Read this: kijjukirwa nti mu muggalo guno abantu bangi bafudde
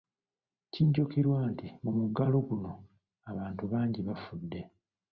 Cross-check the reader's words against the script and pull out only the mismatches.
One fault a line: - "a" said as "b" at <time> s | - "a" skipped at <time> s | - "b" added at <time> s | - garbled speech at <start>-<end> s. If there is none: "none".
none